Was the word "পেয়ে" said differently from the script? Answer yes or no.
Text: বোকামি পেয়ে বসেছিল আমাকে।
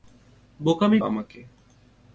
yes